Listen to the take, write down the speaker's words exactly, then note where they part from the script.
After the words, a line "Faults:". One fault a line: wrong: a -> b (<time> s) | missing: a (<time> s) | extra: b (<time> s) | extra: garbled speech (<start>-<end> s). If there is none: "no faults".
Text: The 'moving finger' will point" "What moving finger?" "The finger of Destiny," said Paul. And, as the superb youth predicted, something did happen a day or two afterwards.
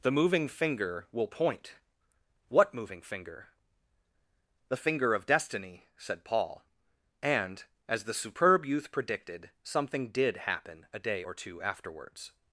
The 'moving finger' will point" "What moving finger?" "The finger of Destiny," said Paul. And, as the superb youth predicted, something did happen a day or two afterwards.
Faults:
no faults